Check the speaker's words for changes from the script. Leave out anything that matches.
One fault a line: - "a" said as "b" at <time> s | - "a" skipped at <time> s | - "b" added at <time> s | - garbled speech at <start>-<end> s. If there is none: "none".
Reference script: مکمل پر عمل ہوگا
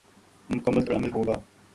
none